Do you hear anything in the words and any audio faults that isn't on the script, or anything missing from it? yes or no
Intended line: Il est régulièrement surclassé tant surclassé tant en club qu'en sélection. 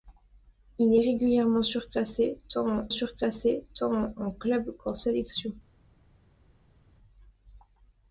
no